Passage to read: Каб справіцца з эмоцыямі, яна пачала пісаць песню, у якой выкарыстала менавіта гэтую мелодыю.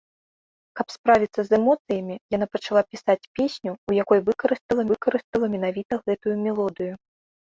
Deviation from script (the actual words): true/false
true